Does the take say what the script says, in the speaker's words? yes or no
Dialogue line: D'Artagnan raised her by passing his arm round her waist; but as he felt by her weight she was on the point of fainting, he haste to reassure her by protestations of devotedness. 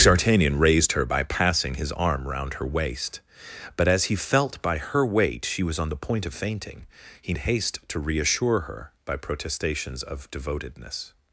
yes